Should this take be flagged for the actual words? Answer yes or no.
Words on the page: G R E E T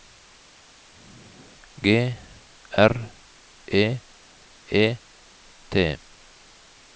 no